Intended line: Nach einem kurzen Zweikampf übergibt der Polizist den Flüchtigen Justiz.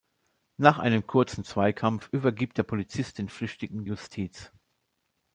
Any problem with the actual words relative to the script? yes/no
no